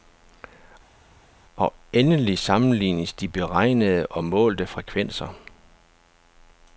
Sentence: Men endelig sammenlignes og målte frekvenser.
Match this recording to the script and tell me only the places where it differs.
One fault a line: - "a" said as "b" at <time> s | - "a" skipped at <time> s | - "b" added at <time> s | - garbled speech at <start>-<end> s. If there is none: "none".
- "Men" said as "Og" at 1.5 s
- "de beregnede" added at 3.1 s